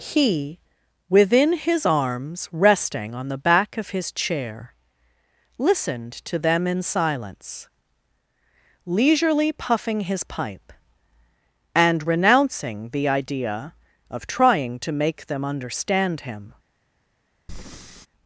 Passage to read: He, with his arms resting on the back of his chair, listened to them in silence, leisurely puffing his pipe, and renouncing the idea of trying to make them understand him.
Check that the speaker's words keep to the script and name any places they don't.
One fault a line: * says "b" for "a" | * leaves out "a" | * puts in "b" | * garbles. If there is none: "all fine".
* says "within" for "with"